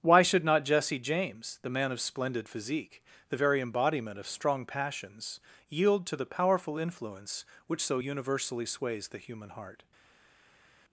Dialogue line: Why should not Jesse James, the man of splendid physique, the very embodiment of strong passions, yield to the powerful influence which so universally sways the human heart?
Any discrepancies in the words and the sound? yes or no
no